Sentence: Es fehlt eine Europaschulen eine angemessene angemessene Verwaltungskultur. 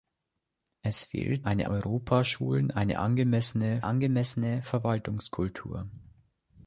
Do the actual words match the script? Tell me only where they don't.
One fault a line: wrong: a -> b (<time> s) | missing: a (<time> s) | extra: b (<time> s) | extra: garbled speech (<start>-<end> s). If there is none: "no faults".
no faults